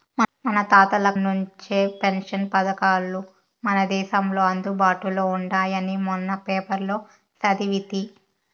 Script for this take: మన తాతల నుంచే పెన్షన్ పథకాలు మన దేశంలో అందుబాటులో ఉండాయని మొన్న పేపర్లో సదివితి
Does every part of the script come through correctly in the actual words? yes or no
yes